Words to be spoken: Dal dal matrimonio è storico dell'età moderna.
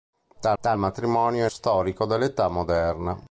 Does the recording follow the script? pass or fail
pass